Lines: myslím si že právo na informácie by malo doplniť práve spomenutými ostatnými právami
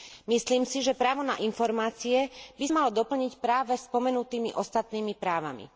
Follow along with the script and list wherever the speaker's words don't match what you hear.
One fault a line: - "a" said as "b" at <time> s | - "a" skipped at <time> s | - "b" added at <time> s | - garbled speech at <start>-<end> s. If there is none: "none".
none